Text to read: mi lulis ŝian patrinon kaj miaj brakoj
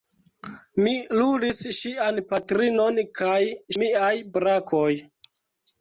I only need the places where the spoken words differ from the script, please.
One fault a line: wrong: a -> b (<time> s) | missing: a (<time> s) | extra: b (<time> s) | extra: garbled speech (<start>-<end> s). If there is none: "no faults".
no faults